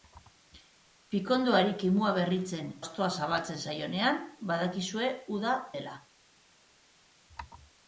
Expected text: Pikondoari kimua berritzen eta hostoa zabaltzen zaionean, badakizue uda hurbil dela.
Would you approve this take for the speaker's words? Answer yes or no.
no